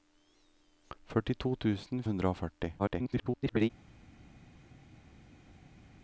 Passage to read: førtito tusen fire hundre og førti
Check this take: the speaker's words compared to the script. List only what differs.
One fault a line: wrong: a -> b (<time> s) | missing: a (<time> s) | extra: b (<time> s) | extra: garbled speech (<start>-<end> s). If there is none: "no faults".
missing: fire (2.0 s)
extra: garbled speech (2.8-3.7 s)